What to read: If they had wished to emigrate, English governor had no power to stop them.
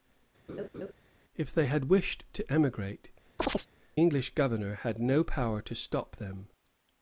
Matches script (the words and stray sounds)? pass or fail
fail